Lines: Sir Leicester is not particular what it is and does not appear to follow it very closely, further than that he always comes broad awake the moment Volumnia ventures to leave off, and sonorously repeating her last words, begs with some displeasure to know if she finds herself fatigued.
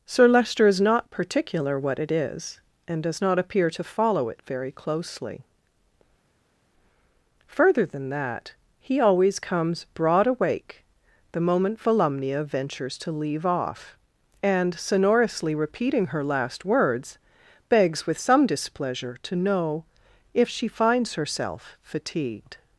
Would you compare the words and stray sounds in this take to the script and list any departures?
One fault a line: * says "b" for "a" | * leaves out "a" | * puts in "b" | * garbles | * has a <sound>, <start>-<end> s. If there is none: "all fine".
all fine